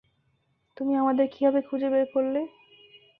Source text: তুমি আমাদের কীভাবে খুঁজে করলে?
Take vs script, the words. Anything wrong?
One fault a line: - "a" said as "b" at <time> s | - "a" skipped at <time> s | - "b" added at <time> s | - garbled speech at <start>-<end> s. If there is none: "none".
- "বের" added at 1.9 s